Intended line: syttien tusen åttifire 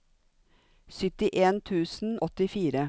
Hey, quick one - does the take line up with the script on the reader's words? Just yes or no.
yes